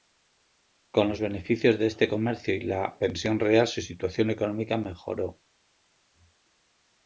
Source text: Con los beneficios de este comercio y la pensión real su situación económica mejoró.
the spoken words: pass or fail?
pass